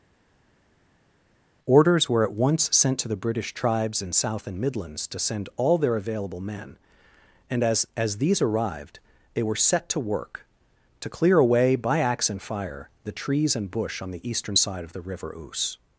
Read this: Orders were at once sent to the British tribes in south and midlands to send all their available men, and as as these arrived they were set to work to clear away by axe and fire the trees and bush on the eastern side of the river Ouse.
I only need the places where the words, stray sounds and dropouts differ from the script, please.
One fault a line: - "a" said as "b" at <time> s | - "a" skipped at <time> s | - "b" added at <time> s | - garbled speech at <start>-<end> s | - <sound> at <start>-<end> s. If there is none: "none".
none